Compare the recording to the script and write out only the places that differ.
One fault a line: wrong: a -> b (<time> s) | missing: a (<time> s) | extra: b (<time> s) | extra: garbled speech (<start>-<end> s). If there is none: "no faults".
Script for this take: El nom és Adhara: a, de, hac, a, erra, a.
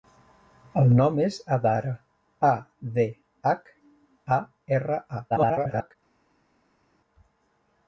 extra: garbled speech (5.3-6.0 s)